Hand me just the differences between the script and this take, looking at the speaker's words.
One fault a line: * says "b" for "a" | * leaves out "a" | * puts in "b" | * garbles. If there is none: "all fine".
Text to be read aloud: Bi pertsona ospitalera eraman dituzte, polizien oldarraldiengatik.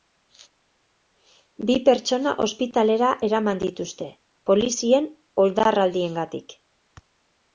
all fine